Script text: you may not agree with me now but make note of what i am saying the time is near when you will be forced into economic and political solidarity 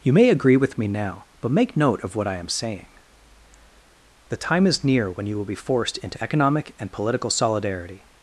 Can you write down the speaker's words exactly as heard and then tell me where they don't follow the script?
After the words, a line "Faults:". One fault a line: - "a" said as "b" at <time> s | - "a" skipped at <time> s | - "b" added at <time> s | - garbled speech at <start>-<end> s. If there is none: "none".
you may agree with me now but make note of what i am saying the time is near when you will be forced into economic and political solidarity
Faults:
- "not" skipped at 0.3 s